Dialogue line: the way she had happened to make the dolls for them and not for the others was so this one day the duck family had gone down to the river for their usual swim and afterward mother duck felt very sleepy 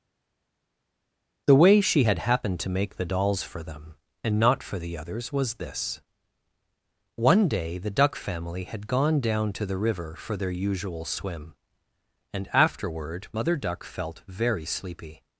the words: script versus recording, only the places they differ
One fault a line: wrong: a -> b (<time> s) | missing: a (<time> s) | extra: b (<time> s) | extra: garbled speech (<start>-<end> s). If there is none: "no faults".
missing: so (5.5 s)